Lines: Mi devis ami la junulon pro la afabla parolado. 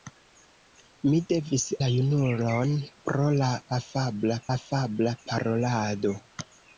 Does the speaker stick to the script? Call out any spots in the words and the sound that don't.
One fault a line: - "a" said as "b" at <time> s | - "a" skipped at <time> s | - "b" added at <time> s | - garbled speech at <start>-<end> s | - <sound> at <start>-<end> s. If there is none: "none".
- "ami" skipped at 1.6 s
- "afabla" added at 4.6 s